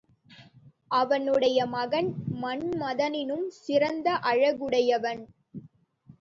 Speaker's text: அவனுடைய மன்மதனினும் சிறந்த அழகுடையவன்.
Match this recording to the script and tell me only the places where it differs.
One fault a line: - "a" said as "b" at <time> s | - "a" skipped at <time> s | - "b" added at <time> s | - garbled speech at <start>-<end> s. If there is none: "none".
- "மகன்" added at 1.7 s